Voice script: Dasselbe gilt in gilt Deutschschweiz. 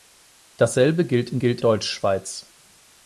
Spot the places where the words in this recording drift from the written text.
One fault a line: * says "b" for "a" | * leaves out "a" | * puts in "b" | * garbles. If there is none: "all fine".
all fine